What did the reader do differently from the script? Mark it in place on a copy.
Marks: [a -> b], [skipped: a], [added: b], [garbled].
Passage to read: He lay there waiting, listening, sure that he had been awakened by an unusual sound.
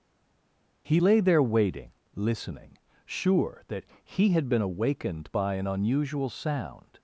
He lay there waiting, listening, sure that he had been awakened by an unusual sound.